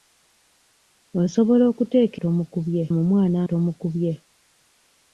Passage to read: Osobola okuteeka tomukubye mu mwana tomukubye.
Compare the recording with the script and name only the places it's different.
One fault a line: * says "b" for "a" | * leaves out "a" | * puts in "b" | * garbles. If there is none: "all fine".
all fine